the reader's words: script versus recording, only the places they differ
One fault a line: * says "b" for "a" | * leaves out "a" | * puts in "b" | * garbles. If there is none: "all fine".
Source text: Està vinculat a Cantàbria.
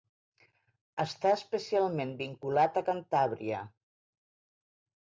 * puts in "especialment"